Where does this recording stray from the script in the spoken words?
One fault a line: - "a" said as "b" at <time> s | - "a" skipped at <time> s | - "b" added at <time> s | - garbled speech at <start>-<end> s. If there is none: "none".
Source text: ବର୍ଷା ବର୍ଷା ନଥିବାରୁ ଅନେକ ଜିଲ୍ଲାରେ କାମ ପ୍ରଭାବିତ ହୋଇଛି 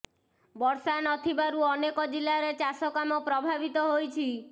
- "ବର୍ଷା" skipped at 0.9 s
- "ଚାଷ" added at 2.6 s